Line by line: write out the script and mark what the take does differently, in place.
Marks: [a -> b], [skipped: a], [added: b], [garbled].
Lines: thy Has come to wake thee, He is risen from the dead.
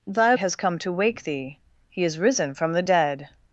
thy Has come to wake thee, He is risen from the dead.